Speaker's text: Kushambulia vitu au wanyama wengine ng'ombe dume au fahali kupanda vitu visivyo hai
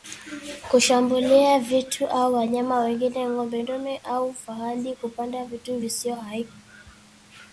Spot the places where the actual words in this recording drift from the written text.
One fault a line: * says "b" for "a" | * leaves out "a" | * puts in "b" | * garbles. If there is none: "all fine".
all fine